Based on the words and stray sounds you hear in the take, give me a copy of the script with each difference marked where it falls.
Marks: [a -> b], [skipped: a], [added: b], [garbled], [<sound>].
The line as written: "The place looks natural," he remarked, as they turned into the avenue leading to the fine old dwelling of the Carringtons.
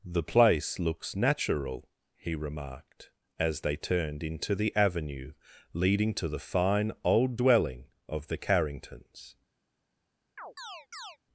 "The place looks natural," he remarked, as they turned into the avenue leading to the fine old dwelling of the Carringtons. [chirp]